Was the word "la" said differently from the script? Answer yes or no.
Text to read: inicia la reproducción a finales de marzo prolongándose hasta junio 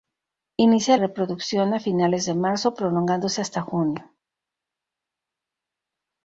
yes